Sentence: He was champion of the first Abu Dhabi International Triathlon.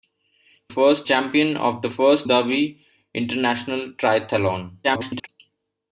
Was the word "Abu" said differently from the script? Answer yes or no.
yes